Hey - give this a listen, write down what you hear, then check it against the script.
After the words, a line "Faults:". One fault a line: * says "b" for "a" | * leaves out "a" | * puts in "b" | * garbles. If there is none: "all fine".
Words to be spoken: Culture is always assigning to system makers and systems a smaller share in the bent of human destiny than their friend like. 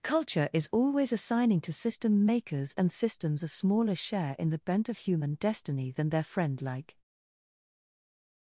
Culture is always assigning to system makers and systems a smaller share in the bent of human destiny than their friend like.
Faults:
all fine